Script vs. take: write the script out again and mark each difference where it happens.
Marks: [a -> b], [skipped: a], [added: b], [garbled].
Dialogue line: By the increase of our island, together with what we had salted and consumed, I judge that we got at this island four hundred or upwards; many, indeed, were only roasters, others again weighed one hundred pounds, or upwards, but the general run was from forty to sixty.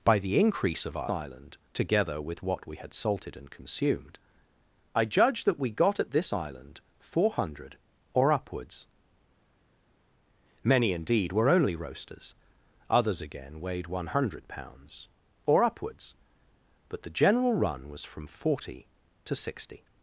By the increase of our island, together with what we had salted and consumed, I judge that we got at this island four hundred or upwards; many, indeed, were only roasters, others again weighed one hundred pounds, or upwards, but the general run was from forty to sixty.